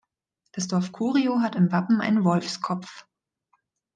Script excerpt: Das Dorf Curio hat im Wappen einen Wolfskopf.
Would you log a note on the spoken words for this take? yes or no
no